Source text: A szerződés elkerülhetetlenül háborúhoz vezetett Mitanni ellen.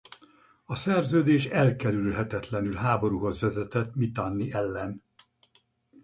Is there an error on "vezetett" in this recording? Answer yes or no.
no